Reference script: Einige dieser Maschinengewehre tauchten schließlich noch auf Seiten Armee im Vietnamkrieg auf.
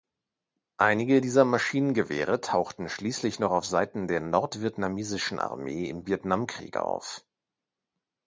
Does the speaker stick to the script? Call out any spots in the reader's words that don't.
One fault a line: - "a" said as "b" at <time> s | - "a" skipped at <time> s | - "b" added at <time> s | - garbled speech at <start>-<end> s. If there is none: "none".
- "der nordvietnamesischen" added at 4.1 s